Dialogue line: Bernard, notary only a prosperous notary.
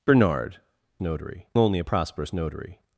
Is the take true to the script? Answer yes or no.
yes